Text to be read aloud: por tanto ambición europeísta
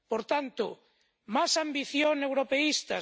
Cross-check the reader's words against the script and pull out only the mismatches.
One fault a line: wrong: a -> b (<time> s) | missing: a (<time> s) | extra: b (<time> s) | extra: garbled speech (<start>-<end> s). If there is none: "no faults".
extra: más (1.4 s)